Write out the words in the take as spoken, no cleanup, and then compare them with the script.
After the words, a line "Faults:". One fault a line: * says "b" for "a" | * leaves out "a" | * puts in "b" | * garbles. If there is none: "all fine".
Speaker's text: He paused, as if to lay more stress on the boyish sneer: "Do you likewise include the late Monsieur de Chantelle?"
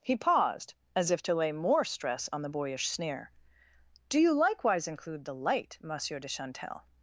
He paused, as if to lay more stress on the boyish sneer: "Do you likewise include the light Monsieur de Chantelle?"
Faults:
* says "light" for "late"